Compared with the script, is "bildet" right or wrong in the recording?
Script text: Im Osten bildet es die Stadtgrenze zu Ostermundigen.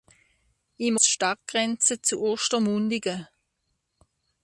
wrong